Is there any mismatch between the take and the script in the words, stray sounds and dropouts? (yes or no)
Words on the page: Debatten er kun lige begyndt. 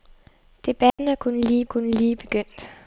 yes